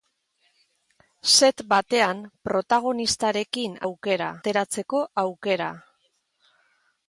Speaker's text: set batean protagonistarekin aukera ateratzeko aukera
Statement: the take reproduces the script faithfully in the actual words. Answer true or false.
true